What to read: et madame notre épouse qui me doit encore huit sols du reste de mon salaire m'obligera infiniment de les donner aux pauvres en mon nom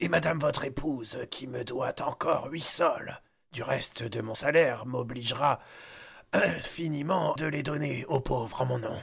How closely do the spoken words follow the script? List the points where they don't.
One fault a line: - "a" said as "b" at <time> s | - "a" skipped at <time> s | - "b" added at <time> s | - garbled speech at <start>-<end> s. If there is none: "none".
- "notre" said as "votre" at 0.4 s